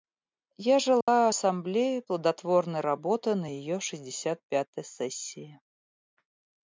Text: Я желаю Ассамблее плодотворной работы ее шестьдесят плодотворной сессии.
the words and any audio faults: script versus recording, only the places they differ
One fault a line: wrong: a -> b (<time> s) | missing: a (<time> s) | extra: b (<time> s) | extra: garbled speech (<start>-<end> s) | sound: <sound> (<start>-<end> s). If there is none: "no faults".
sound: dropout (1.0-1.1 s)
extra: на (3.3 s)
wrong: плодотворной -> пятой (4.5 s)